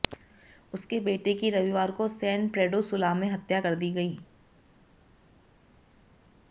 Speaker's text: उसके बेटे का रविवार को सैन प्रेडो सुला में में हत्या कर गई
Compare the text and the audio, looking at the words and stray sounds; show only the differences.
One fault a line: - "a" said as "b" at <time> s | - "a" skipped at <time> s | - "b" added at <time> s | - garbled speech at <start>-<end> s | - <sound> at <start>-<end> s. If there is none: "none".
- "का" said as "की" at 1.3 s
- "में" skipped at 3.3 s
- "दी" added at 3.8 s